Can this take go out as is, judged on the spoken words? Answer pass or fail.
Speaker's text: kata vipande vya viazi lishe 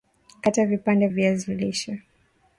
fail